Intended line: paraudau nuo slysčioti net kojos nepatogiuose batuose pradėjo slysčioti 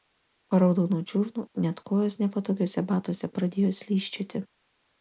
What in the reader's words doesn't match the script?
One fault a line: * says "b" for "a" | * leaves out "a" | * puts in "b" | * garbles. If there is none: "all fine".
* says "čiurnų" for "slysčioti"